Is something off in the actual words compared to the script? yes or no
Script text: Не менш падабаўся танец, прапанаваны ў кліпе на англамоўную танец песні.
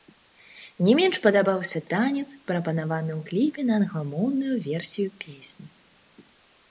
yes